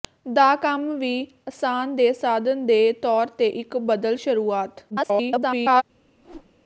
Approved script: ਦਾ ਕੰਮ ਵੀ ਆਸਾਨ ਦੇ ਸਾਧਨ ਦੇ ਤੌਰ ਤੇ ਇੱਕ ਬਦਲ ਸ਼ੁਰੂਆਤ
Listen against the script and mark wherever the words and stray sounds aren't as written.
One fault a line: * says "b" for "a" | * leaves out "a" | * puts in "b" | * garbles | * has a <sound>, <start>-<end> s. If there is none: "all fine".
* garbles
* has a whoosh, 6.2-6.5 s